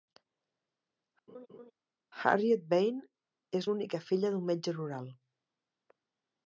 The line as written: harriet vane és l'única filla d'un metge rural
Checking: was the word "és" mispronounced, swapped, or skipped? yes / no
no